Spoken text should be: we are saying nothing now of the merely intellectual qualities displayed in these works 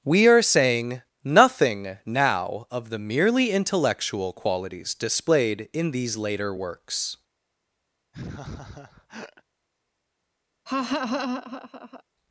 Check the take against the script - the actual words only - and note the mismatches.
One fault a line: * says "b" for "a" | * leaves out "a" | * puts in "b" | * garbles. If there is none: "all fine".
* puts in "later"